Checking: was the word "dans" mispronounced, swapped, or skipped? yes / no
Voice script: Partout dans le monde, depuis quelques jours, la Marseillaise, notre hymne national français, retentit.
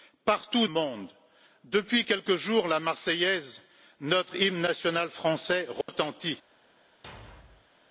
yes